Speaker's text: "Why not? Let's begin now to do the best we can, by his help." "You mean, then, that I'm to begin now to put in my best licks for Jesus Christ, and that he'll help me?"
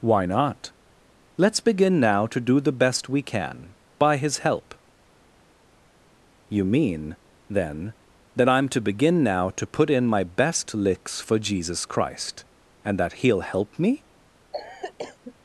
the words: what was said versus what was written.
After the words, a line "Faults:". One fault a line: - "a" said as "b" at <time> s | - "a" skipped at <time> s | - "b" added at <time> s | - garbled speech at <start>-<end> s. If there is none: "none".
"Why not? Let's begin now to do the best we can, by his help." "You mean, then, that I'm to begin now to put in my best licks for Jesus Christ, and that he'll help me?"
Faults:
none